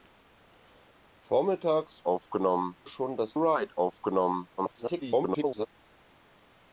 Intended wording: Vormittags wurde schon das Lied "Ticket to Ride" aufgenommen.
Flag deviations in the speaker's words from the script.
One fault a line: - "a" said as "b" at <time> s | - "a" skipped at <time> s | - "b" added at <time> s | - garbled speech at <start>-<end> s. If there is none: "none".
- "wurde" said as "aufgenommen" at 2.0 s
- "Lied Ticket to" skipped at 3.4 s
- garbled speech at 4.6-5.7 s